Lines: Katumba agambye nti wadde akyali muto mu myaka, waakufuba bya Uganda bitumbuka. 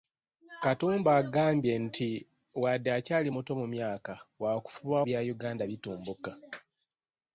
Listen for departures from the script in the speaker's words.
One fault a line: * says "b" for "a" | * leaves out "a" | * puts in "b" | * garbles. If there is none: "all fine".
all fine